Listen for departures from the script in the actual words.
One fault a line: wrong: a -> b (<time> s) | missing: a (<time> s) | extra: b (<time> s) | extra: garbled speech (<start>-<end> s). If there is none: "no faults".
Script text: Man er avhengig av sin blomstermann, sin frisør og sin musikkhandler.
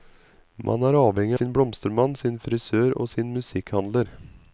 missing: av (1.4 s)